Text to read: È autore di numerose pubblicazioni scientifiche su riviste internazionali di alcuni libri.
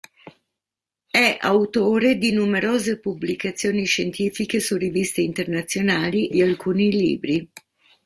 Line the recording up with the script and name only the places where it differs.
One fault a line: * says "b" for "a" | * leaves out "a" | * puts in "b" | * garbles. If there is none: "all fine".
all fine